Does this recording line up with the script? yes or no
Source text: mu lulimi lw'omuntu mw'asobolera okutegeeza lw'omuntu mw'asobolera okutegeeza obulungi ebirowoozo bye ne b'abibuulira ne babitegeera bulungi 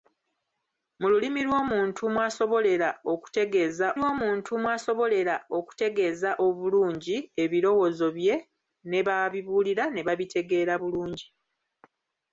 yes